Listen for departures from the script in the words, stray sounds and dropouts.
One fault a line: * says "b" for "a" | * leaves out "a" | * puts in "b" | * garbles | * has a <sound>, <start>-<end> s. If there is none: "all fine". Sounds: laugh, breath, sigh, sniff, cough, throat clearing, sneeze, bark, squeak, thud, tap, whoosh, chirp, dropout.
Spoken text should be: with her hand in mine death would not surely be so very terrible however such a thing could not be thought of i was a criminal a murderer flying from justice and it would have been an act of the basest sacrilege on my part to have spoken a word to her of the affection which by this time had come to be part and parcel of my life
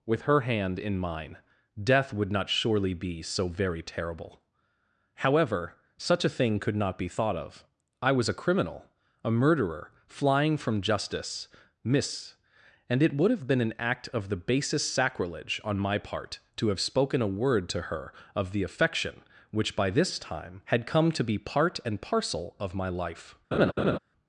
* puts in "miss"
* has a laugh, 23.5-24.0 s